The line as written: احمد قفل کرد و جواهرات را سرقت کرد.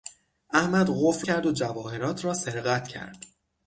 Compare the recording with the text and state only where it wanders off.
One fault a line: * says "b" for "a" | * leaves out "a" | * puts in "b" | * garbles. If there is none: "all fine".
all fine